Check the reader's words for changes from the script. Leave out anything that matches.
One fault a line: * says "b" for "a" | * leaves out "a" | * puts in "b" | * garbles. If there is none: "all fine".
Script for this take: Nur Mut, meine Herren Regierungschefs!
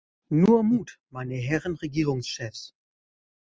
all fine